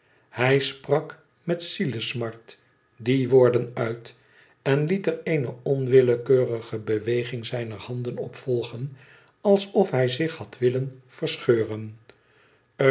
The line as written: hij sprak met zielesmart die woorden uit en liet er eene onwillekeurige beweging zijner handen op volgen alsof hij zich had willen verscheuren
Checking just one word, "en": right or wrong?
right